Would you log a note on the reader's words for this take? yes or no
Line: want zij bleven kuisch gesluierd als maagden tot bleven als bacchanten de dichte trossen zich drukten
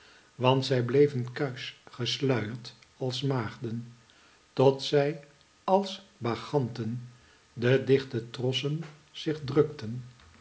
yes